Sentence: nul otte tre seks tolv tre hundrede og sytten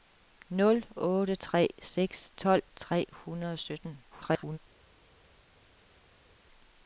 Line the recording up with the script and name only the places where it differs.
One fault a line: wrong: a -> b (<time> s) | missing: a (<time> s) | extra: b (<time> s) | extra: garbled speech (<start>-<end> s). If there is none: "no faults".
extra: garbled speech (4.1-4.6 s)